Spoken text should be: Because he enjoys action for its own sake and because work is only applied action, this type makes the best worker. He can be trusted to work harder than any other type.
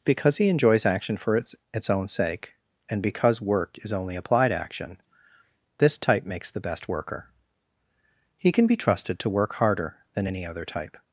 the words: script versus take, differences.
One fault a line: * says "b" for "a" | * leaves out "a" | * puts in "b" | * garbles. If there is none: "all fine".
* puts in "its"